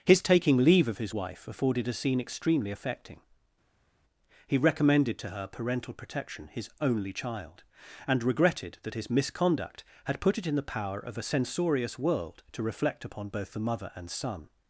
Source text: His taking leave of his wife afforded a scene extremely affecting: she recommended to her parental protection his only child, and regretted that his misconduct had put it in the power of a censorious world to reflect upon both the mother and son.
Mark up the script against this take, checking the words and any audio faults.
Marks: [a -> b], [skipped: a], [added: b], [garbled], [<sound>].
His taking leave of his wife afforded a scene extremely affecting: [she -> he] recommended to her parental protection his only child, and regretted that his misconduct had put it in the power of a censorious world to reflect upon both the mother and son.